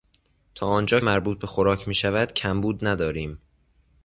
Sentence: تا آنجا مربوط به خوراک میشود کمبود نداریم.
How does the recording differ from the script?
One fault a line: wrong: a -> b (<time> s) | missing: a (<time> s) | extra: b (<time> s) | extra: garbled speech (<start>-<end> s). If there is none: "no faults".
no faults